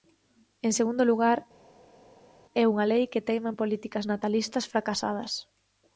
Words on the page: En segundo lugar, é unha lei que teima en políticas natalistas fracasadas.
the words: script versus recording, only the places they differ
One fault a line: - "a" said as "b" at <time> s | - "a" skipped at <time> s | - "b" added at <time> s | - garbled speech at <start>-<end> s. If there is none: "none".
none